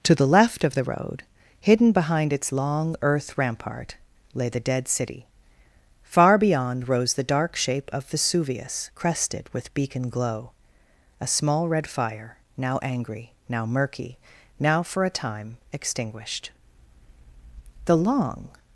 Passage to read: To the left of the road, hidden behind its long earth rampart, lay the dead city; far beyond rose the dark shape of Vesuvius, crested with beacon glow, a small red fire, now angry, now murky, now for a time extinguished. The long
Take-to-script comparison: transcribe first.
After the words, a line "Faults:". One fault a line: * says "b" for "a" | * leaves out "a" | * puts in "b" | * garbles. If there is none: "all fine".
To the left of the road, hidden behind its long earth rampart, lay the dead city; far beyond rose the dark shape of Vesuvius, crested with beacon glow, a small red fire, now angry, now murky, now for a time extinguished. The long
Faults:
all fine